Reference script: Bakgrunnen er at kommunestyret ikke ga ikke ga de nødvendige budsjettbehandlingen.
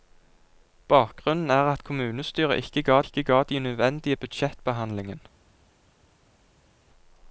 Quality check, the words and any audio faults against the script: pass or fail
pass